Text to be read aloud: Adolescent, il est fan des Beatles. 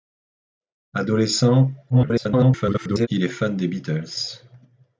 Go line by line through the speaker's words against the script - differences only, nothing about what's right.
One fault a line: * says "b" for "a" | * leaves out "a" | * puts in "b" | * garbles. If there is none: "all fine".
* garbles